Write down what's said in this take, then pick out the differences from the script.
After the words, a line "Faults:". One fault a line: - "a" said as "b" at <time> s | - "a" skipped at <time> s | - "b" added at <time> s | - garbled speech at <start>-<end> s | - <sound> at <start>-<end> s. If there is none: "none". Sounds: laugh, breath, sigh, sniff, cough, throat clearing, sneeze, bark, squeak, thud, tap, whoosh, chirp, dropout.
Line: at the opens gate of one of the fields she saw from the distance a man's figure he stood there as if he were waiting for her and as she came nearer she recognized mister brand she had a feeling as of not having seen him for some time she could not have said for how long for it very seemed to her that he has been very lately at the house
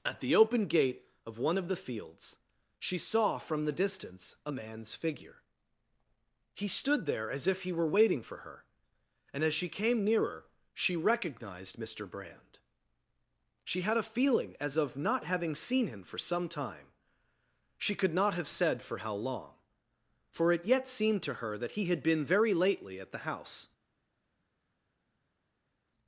at the open gate of one of the fields she saw from the distance a man's figure he stood there as if he were waiting for her and as she came nearer she recognized mister brand she had a feeling as of not having seen him for some time she could not have said for how long for it yet seemed to her that he had been very lately at the house
Faults:
- "opens" said as "open" at 0.3 s
- "very" said as "yet" at 20.7 s
- "has" said as "had" at 21.9 s